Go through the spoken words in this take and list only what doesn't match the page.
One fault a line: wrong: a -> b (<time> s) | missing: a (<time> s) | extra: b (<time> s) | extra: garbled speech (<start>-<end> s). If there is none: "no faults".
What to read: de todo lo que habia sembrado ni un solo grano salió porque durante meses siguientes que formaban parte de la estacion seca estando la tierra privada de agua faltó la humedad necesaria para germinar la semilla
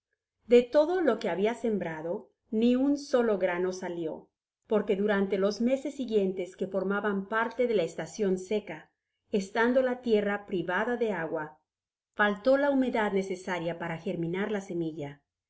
extra: los (5.4 s)